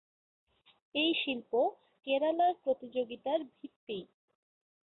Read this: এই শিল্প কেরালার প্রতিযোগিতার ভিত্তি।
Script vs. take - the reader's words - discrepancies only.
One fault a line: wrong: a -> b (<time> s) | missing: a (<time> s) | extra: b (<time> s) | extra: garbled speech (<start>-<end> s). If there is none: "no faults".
no faults